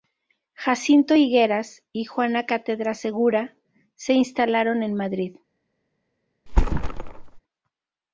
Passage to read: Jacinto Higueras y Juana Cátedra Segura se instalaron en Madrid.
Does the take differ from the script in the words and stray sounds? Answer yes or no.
yes